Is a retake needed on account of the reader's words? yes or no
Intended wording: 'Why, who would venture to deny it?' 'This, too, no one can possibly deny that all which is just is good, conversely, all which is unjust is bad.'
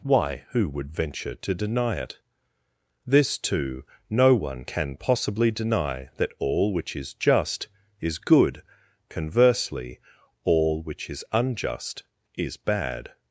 no